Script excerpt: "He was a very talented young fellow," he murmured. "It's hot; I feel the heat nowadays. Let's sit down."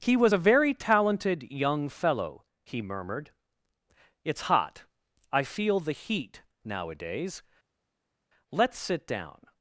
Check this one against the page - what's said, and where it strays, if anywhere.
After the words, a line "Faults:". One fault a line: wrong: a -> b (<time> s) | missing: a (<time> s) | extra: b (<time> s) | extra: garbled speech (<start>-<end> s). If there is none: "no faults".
"He was a very talented young fellow," he murmured. "It's hot; I feel the heat nowadays. Let's sit down."
Faults:
no faults